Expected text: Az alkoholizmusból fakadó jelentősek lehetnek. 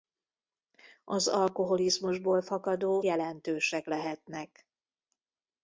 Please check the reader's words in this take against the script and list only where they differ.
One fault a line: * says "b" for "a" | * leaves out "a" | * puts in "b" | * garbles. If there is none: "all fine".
all fine